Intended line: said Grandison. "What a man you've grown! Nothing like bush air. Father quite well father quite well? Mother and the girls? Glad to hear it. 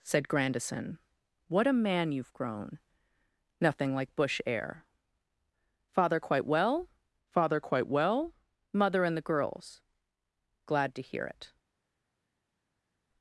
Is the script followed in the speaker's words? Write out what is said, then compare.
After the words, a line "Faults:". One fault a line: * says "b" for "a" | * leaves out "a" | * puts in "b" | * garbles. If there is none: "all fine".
said Grandison. "What a man you've grown! Nothing like bush air. Father quite well father quite well? Mother and the girls? Glad to hear it.
Faults:
all fine